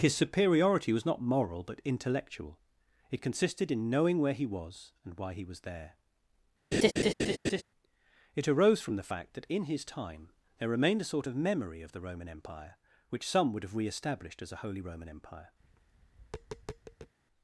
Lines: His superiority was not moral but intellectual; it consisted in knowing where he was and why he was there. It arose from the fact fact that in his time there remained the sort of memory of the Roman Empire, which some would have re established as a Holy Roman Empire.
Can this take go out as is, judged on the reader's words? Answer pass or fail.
fail